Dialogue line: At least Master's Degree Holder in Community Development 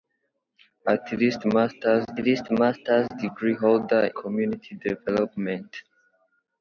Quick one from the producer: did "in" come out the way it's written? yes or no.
no